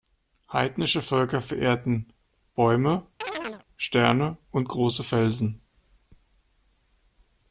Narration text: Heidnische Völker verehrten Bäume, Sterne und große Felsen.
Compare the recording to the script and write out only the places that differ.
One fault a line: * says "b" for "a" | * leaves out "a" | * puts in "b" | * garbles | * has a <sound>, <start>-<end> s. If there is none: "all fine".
* has a chirp, 3.2-3.6 s